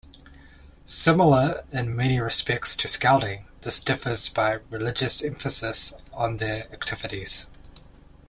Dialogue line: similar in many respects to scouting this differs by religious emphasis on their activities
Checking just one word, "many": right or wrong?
right